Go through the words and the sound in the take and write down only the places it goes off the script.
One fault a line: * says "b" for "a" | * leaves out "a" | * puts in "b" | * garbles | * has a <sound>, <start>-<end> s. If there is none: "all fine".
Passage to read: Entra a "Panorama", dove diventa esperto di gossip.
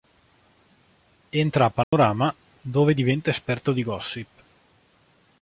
* has a dropout, 1.8-1.9 s